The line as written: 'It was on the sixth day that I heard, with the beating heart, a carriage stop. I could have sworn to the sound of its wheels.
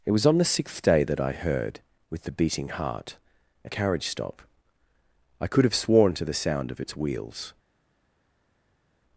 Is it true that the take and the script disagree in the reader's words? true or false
false